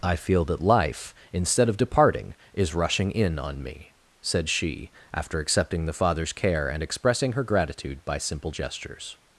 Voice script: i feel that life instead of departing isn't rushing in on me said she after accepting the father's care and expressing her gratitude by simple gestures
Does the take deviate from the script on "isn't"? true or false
true